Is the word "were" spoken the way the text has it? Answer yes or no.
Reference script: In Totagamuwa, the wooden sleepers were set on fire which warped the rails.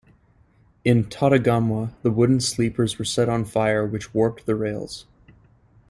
yes